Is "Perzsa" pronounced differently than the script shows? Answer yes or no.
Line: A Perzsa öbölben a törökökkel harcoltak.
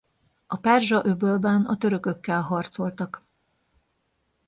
no